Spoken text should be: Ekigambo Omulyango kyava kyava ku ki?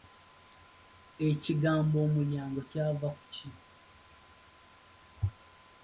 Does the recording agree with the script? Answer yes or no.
no